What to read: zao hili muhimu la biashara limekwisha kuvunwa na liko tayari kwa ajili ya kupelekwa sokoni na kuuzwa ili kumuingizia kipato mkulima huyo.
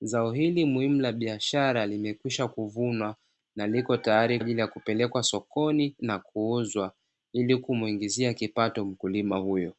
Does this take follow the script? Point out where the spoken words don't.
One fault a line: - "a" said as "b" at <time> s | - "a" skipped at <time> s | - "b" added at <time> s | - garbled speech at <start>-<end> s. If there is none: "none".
- "kwa" skipped at 4.4 s